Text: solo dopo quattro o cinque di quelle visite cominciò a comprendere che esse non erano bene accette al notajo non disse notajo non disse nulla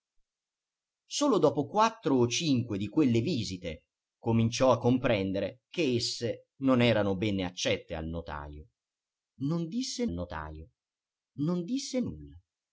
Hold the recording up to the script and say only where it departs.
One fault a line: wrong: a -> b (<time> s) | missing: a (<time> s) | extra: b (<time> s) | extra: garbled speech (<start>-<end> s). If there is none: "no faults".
no faults